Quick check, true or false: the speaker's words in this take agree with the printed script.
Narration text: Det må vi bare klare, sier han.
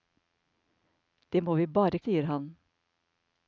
false